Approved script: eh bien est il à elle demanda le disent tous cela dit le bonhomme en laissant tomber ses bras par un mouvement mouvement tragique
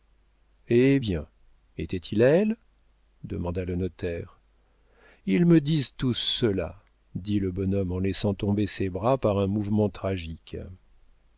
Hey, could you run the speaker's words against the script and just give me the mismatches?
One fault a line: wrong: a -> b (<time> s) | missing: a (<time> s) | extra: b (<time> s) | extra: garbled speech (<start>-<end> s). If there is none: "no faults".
wrong: est -> était (1.8 s)
extra: notaire ils me (3.7 s)
missing: mouvement (9.9 s)